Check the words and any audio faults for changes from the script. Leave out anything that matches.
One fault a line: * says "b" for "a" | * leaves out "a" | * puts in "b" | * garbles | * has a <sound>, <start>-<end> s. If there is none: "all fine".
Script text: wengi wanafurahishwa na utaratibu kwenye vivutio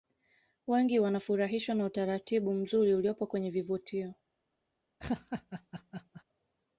* puts in "mzuri uliopo"
* has a laugh, 5.0-6.2 s